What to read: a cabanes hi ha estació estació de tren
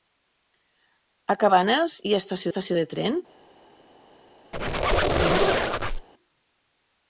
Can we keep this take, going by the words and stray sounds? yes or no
no